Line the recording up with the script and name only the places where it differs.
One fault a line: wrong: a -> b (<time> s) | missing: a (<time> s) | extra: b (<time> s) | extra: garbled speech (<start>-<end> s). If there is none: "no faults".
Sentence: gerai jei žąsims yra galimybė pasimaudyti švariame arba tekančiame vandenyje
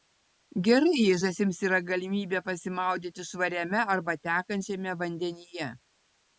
no faults